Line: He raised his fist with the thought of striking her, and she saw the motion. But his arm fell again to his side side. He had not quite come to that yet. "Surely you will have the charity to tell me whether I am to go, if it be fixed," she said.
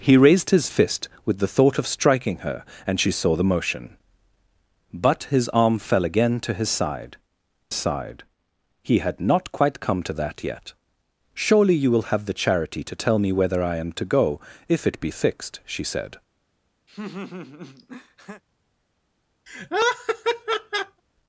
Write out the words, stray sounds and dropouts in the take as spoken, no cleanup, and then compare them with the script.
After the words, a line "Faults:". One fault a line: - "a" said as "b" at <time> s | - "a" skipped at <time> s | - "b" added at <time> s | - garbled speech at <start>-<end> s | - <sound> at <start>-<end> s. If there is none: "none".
He raised his fist with the thought of striking her, and she saw the motion. But his arm fell again to his side side. He had not quite come to that yet. "Surely you will have the charity to tell me whether I am to go, if it be fixed," she said.
Faults:
- laugh at 16.9-18.4 s
- laugh at 19.5-21.0 s